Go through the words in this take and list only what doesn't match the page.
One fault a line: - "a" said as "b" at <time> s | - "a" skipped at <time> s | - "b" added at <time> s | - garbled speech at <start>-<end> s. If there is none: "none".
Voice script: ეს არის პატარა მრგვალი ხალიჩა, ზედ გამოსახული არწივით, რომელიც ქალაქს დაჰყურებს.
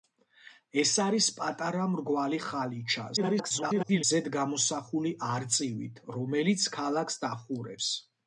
- garbled speech at 3.2-4.0 s